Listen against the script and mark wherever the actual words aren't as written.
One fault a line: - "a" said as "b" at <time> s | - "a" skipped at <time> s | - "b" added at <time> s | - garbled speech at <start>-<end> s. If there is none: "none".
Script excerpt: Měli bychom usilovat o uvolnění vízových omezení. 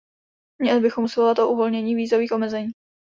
none